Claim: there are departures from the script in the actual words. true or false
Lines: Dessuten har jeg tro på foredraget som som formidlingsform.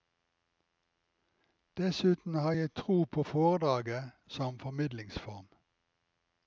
true